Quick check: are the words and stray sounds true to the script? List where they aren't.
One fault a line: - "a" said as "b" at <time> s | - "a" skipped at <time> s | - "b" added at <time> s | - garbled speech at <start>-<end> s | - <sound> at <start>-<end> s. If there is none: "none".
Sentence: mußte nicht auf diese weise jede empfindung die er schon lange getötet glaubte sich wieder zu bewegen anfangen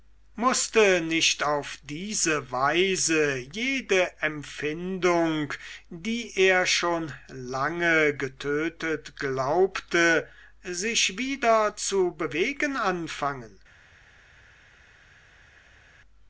none